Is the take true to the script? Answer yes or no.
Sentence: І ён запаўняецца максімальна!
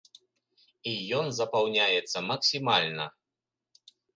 yes